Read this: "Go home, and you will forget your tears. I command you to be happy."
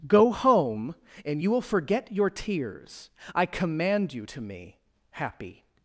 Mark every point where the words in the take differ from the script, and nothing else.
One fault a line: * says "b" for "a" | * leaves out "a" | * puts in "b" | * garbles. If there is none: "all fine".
* says "me" for "be"